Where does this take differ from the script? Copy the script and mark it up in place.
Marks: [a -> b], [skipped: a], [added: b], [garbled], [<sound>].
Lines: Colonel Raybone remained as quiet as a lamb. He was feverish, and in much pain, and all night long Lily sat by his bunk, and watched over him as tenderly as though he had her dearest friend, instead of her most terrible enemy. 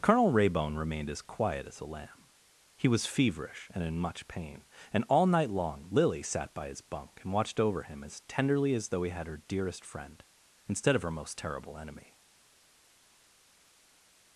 Colonel Raybone remained as quiet as a lamb. He was feverish, and in much pain, and all night long Lily sat by his bunk, and watched over him as tenderly as though he had her dearest friend, instead of her most terrible enemy.